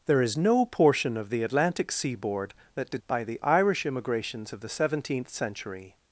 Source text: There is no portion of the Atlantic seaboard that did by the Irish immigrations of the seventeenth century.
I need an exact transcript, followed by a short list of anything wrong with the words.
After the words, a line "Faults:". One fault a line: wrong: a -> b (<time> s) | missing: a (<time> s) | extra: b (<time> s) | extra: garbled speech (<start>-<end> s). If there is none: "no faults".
There is no portion of the Atlantic seaboard that did by the Irish immigrations of the seventeenth century.
Faults:
no faults